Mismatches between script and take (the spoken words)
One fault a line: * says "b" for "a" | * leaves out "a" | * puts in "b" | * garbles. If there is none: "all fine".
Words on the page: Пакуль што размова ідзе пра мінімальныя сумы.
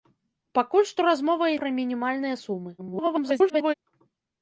* leaves out "ідзе"
* garbles